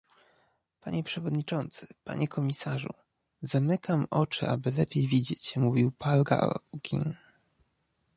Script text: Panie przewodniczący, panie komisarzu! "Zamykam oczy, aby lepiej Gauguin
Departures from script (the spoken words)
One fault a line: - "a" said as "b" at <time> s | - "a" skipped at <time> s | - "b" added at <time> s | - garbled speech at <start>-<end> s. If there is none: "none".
- "widzieć mówił Paul" added at 5.1 s